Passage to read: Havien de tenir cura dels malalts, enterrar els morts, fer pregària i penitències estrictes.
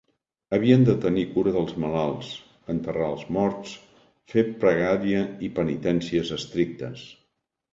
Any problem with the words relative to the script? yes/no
no